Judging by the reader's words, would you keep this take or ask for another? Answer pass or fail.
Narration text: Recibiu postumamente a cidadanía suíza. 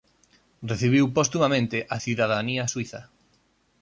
pass